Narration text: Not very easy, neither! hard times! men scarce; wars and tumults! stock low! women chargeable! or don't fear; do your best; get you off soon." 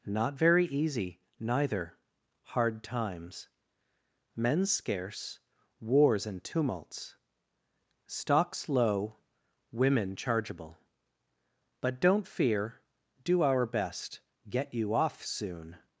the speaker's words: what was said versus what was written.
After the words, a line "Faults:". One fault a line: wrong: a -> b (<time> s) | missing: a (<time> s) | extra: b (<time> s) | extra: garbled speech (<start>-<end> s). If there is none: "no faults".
Not very easy, neither! hard times! men scarce; wars and tumults! stocks low! women chargeable! but don't fear; do our best; get you off soon."
Faults:
wrong: stock -> stocks (8.1 s)
wrong: or -> but (11.8 s)
wrong: your -> our (13.4 s)